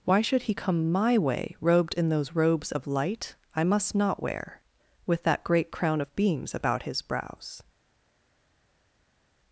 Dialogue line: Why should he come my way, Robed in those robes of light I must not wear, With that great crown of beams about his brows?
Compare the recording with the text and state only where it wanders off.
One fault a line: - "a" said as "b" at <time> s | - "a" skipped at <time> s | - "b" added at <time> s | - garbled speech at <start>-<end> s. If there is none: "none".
none